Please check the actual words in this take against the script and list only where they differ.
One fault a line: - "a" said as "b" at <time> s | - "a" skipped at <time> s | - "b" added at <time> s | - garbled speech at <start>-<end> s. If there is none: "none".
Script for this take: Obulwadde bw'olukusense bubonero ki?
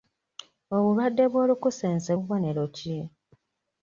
none